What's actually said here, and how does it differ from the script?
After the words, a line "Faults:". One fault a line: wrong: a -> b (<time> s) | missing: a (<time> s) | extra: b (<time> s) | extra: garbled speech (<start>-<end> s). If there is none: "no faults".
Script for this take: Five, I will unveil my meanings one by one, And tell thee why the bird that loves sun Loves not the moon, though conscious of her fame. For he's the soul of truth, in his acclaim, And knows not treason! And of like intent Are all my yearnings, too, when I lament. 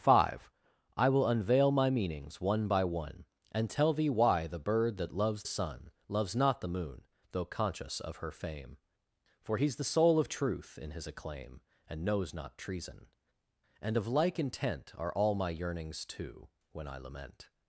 Five, I will unveil my meanings one by one, And tell thee why the bird that loves sun Loves not the moon, though conscious of her fame. For he's the soul of truth, in his acclaim, And knows not treason! And of like intent Are all my yearnings, too, when I lament.
Faults:
no faults